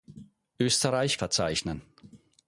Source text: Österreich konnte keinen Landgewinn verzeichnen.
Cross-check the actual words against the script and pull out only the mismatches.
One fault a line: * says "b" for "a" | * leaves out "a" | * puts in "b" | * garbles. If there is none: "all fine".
* leaves out "konnte keinen Landgewinn"